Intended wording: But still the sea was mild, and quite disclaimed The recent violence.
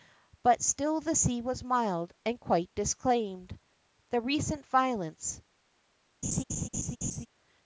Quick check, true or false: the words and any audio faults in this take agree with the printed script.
false